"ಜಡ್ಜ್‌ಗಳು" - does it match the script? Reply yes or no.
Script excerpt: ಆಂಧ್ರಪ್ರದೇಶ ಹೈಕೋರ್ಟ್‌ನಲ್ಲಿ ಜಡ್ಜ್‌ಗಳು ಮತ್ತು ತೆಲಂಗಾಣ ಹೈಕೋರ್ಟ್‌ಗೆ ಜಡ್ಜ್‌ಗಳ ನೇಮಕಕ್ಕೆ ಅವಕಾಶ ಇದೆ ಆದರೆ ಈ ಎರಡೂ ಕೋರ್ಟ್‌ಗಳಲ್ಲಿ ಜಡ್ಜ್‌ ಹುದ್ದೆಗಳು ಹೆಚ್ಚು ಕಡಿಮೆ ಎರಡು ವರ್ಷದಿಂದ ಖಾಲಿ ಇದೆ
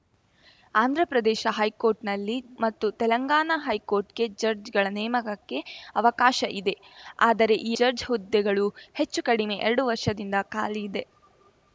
no